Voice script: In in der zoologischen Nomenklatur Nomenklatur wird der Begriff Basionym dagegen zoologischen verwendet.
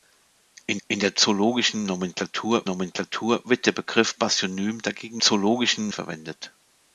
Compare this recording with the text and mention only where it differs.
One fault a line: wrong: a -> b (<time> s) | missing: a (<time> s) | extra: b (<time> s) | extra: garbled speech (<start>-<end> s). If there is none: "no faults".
no faults